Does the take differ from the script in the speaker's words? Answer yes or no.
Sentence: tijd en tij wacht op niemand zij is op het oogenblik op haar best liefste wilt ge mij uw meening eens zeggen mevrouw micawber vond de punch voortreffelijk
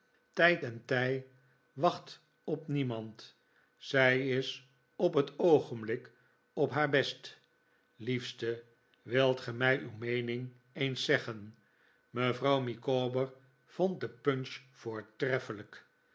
no